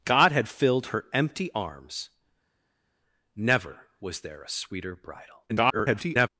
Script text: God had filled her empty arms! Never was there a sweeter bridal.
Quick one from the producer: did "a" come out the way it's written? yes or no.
yes